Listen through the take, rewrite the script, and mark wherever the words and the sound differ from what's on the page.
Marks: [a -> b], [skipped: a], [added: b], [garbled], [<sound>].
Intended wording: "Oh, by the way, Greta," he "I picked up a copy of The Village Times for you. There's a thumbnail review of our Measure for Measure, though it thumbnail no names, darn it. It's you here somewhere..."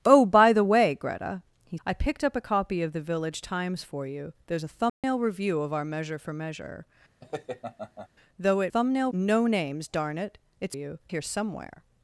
"Oh, by the way, Greta," he "I picked up a copy of The Village Times for you. There's a thumbnail [dropout] review of our Measure for Measure, [laugh] though it thumbnail no names, darn it. It's you here somewhere..."